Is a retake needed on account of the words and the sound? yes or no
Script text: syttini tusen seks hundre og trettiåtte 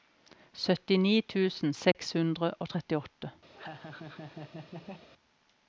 yes